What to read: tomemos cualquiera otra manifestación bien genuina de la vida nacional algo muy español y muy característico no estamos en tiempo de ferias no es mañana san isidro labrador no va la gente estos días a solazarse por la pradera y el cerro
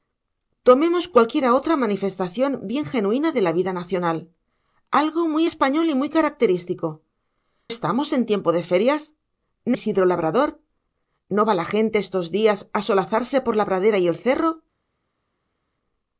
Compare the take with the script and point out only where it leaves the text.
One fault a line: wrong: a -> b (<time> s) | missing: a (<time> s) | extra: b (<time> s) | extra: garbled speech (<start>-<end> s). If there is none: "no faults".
missing: no (7.0 s)
missing: es mañana san (9.8 s)